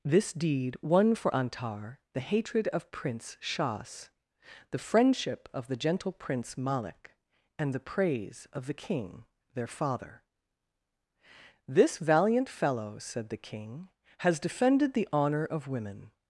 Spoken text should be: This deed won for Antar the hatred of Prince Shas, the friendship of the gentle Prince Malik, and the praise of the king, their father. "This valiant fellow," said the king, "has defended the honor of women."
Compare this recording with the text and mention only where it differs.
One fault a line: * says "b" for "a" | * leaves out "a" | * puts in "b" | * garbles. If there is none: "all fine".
all fine